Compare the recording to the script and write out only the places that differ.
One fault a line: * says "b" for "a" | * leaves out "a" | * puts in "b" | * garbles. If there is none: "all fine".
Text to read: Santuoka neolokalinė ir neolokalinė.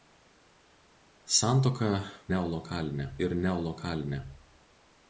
all fine